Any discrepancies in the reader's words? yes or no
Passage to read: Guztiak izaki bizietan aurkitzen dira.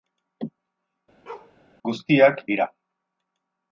yes